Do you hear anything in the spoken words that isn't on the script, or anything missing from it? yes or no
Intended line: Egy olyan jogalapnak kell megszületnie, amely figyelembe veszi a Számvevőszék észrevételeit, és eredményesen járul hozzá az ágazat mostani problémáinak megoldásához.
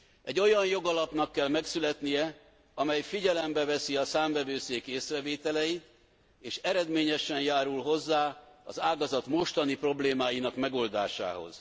no